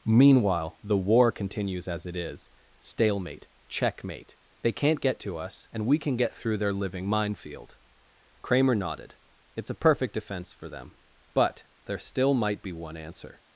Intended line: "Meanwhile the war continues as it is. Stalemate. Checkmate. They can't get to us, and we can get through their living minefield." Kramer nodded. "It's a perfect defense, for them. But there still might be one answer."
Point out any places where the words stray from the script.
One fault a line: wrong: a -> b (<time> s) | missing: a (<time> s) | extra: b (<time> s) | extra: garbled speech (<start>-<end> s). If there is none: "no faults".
no faults